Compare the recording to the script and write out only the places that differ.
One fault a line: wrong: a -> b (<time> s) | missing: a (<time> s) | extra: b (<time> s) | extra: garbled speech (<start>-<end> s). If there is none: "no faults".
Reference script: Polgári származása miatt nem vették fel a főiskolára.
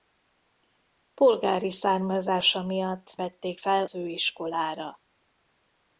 missing: nem (3.1 s)
missing: a (3.9 s)